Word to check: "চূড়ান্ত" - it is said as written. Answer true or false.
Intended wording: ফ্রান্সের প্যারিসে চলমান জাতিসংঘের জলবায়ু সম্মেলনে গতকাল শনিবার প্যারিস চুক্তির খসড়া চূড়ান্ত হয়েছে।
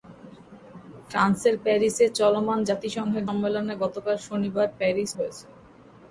false